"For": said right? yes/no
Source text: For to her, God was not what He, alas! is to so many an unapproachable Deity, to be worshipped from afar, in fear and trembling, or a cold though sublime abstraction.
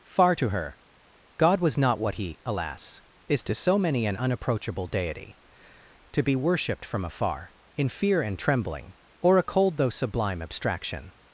no